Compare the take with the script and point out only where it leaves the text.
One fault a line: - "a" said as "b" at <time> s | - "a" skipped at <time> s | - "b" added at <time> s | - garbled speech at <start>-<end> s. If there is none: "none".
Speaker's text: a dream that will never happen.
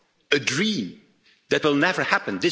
none